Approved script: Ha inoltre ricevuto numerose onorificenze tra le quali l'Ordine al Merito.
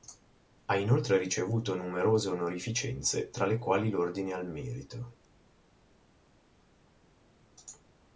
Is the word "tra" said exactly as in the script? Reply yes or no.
yes